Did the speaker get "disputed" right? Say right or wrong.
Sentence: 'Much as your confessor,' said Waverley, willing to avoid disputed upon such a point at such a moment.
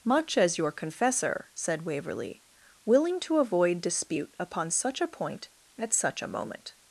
wrong